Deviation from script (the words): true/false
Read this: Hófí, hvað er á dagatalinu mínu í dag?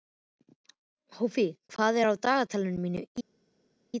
false